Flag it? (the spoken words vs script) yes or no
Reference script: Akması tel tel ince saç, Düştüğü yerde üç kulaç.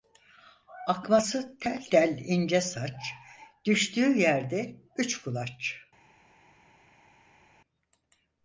no